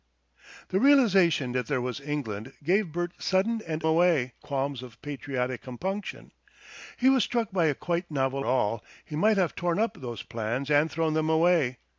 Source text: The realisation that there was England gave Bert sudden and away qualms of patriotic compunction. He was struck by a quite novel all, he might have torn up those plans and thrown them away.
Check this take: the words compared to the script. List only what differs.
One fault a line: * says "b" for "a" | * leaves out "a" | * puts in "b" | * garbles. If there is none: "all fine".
all fine